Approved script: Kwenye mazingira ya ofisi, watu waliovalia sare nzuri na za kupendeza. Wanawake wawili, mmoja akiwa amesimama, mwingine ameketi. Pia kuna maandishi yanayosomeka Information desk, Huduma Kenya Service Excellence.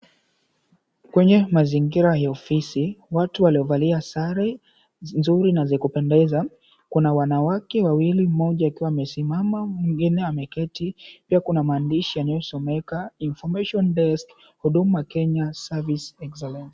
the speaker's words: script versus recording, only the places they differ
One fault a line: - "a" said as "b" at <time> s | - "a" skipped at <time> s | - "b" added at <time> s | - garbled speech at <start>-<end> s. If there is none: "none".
- "Kuna" added at 6.9 s